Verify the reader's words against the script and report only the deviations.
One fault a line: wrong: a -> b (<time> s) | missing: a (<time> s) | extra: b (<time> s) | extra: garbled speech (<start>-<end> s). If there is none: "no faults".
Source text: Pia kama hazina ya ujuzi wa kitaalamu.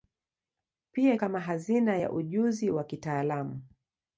no faults